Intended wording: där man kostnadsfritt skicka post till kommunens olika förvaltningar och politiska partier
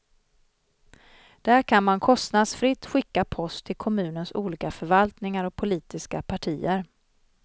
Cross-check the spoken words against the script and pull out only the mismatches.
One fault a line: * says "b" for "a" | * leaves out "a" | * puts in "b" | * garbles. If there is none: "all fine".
* puts in "kan"